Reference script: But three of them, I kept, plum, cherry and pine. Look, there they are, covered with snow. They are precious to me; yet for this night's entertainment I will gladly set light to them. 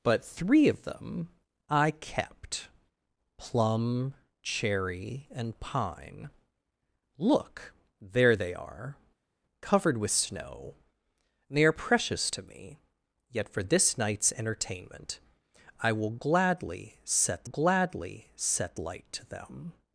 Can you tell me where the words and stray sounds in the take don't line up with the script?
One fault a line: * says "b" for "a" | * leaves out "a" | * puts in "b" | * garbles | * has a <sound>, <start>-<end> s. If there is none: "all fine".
* puts in "gladly set"